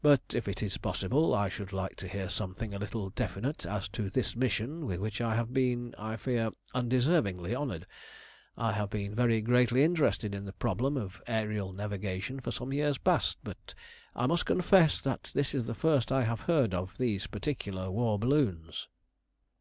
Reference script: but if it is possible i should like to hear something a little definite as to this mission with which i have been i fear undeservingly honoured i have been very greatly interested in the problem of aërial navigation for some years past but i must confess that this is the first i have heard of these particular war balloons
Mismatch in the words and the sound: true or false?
false